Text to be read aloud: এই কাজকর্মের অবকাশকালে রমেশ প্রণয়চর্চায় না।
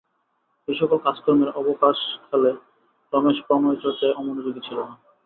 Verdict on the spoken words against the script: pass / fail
fail